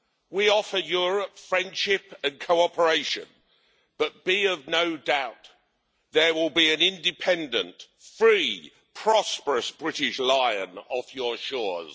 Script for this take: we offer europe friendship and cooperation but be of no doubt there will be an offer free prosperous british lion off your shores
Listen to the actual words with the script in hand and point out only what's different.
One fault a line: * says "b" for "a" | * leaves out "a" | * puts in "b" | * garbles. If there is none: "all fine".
* says "independent" for "offer"